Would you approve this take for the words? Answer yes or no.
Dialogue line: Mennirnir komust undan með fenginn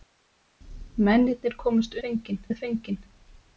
no